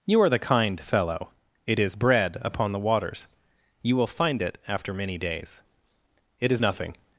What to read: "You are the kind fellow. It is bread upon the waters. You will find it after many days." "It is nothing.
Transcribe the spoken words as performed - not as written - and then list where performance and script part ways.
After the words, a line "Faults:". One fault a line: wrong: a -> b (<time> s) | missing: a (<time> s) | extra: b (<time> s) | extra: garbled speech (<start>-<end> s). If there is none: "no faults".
"You are the kind fellow. It is bread upon the waters. You will find it after many days." "It is nothing.
Faults:
no faults